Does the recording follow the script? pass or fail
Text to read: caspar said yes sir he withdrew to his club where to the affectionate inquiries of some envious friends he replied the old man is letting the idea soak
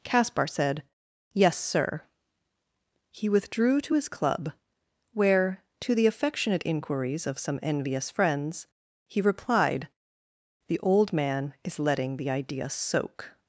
pass